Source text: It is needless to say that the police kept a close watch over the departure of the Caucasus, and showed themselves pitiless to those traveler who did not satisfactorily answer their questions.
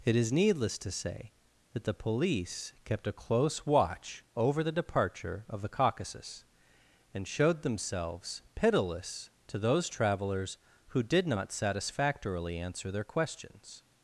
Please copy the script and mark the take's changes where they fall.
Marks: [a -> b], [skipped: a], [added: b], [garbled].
It is needless to say that the police kept a close watch over the departure of the Caucasus, and showed themselves pitiless to those [traveler -> travelers] who did not satisfactorily answer their questions.